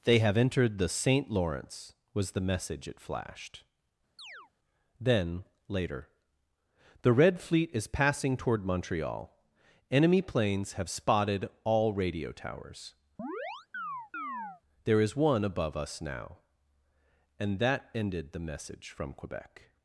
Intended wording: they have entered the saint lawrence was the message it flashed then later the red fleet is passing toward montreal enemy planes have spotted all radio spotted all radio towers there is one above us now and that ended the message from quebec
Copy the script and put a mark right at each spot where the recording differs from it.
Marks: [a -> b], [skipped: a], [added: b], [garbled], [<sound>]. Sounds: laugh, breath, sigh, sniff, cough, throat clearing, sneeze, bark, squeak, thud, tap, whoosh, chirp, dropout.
they have entered the saint lawrence was the message it flashed [chirp] then later the red fleet is passing toward montreal enemy planes have spotted all radio [skipped: spotted all radio] towers [chirp] there is one above us now and that ended the message from quebec